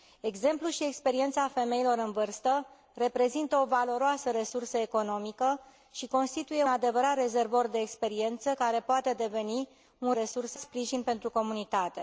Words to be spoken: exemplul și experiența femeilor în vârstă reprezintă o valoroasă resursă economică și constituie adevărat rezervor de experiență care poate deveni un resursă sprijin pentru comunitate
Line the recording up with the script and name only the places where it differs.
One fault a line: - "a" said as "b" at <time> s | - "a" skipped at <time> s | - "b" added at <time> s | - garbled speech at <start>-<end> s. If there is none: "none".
none